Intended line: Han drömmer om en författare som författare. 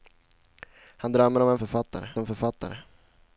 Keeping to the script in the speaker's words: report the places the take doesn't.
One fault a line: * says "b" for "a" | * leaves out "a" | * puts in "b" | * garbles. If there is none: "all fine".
all fine